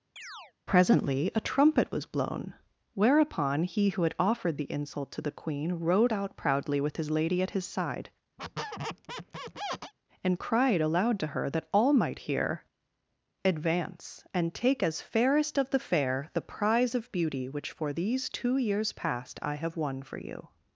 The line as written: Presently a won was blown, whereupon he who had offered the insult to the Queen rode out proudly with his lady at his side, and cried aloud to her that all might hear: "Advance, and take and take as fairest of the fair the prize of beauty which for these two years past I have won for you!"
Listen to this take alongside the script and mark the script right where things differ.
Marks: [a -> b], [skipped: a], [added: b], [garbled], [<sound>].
[chirp] Presently a [won -> trumpet] was blown, whereupon he who had offered the insult to the Queen rode out proudly with his lady at his side, [squeak] and cried aloud to her that all might hear: "Advance, and take [skipped: and take] as fairest of the fair the prize of beauty which for these two years past I have won for you!"